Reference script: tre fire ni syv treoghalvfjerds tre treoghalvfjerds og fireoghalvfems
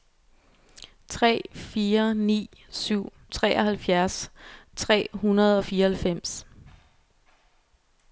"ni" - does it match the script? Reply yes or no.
yes